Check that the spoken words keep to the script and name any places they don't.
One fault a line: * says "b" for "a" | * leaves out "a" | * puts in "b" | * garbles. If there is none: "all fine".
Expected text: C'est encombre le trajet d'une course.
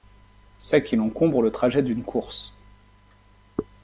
* puts in "qu'il"